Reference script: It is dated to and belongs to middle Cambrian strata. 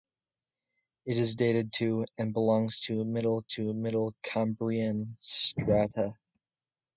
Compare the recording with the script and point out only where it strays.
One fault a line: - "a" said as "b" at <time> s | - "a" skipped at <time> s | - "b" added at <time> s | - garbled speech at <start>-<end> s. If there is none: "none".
- "to middle" added at 3.5 s